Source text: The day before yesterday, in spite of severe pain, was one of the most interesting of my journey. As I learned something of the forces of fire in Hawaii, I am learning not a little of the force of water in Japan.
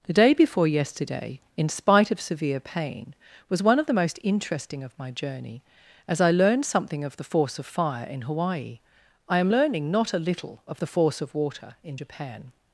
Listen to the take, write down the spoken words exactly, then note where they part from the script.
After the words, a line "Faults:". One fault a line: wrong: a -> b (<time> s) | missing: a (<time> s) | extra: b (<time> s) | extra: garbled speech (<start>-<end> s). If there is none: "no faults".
The day before yesterday, in spite of severe pain, was one of the most interesting of my journey. As I learned something of the force of fire in Hawaii, I am learning not a little of the force of water in Japan.
Faults:
wrong: forces -> force (7.2 s)